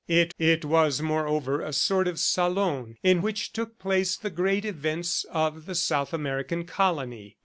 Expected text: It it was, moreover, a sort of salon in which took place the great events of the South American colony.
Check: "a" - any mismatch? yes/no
no